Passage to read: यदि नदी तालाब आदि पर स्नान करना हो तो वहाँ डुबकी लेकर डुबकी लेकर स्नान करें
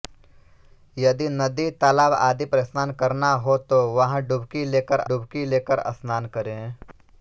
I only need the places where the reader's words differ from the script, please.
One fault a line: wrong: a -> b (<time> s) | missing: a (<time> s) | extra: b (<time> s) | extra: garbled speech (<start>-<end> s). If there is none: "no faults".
no faults